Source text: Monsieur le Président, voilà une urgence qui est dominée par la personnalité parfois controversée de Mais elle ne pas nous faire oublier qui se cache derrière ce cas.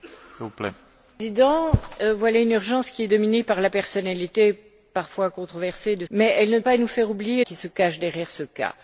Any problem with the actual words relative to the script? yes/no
no